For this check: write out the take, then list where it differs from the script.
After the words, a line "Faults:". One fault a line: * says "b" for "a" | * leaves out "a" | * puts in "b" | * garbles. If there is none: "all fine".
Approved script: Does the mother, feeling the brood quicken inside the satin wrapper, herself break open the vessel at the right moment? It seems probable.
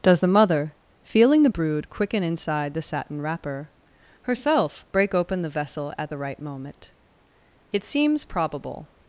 Does the mother, feeling the brood quicken inside the satin wrapper, herself break open the vessel at the right moment? It seems probable.
Faults:
all fine